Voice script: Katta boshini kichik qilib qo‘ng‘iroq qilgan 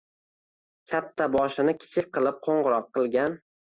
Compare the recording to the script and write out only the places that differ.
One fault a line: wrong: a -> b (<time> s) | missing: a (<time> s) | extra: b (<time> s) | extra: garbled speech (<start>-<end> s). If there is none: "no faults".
no faults